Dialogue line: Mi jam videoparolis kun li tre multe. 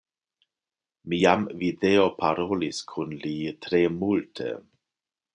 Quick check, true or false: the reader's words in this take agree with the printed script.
true